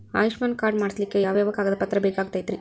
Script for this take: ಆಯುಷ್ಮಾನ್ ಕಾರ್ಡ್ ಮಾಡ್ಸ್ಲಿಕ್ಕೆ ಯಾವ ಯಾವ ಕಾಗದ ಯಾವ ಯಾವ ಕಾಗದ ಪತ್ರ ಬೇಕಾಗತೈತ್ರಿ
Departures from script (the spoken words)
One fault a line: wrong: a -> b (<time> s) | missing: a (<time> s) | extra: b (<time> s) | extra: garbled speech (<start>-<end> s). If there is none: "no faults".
missing: ಯಾವ ಯಾವ ಕಾಗದ (1.7 s)